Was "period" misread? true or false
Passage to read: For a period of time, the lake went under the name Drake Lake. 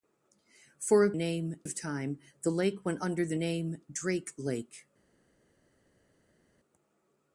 true